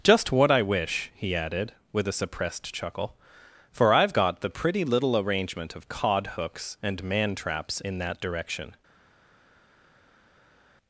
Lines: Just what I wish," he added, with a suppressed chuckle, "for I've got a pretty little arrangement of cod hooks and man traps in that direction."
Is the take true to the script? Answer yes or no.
no